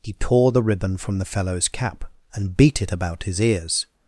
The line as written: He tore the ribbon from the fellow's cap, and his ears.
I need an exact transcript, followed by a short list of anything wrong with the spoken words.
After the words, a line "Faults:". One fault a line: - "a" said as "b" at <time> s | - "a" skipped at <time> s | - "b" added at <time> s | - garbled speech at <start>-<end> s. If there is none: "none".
He tore the ribbon from the fellow's cap, and beat it about his ears.
Faults:
- "beat it about" added at 2.5 s